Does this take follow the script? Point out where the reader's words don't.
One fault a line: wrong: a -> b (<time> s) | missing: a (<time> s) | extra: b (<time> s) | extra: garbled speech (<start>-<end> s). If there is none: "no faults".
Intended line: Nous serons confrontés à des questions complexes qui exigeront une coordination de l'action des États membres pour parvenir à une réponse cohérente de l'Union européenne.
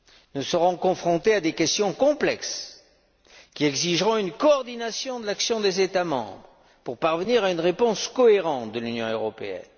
no faults